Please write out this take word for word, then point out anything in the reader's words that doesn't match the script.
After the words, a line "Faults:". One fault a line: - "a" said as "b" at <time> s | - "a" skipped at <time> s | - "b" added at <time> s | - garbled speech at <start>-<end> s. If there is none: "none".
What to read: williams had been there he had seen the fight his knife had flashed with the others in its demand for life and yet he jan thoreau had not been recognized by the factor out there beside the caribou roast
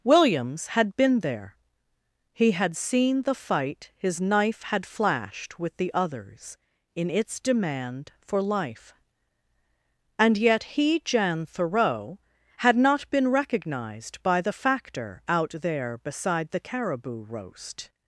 williams had been there he had seen the fight his knife had flashed with the others in its demand for life and yet he jan thoreau had not been recognized by the factor out there beside the caribou roast
Faults:
none